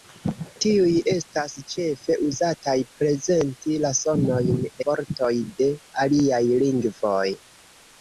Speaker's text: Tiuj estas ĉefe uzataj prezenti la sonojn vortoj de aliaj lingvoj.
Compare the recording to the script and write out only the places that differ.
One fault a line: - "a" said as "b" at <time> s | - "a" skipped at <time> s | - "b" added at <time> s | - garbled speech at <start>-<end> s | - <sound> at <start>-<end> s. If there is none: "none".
none